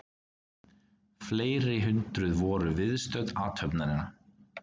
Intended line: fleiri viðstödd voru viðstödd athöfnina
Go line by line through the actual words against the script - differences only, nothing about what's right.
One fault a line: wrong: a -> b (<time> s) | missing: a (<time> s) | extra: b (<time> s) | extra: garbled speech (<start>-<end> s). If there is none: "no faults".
wrong: viðstödd -> hundruð (1.9 s)